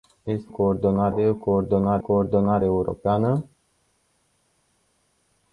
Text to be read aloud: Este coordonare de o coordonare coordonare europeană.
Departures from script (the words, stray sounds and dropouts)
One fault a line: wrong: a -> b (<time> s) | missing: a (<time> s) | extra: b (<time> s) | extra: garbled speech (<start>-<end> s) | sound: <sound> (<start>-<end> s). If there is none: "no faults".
no faults